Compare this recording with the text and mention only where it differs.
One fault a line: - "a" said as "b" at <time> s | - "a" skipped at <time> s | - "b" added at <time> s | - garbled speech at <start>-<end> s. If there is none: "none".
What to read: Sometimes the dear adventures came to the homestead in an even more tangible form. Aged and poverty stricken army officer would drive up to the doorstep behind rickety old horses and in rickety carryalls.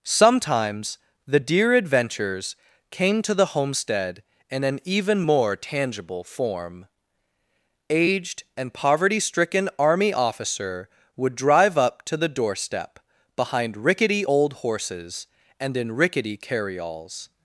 none